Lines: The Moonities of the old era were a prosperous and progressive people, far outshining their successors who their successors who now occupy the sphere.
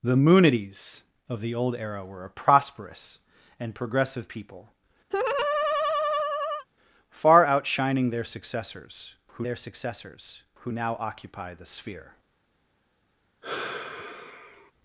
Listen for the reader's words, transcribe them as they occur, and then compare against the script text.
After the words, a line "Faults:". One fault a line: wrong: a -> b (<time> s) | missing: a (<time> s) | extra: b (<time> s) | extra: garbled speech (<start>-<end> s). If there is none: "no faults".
The Moonities of the old era were a prosperous and progressive people, far outshining their successors who their successors who now occupy the sphere.
Faults:
no faults